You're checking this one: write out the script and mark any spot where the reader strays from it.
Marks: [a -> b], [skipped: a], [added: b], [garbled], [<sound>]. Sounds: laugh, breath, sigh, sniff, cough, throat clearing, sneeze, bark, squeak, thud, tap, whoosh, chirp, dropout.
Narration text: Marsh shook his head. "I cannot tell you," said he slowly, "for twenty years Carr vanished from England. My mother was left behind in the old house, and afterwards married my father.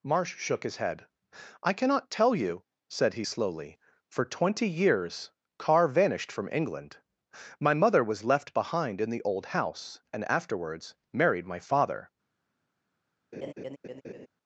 Marsh shook his head. "I cannot tell you," said he slowly, "for twenty years Carr vanished from England. My mother was left behind in the old house, and afterwards married my father. [laugh]